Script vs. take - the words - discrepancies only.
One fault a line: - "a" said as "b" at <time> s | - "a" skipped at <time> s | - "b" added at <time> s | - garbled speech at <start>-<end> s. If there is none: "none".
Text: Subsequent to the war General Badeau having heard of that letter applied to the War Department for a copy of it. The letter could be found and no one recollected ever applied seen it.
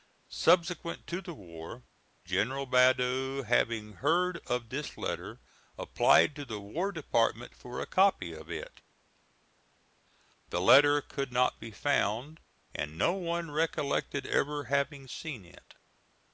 - "that" said as "this" at 4.7 s
- "not" added at 11.3 s
- "applied" said as "having" at 14.6 s